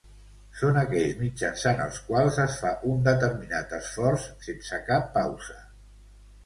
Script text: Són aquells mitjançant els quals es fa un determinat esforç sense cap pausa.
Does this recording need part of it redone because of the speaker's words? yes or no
no